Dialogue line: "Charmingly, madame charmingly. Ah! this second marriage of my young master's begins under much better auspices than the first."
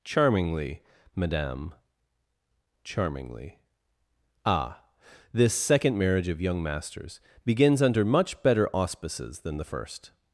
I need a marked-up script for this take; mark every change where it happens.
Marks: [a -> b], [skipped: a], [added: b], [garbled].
"Charmingly, madame charmingly. Ah! this second marriage of [skipped: my] young master's begins under much better auspices than the first."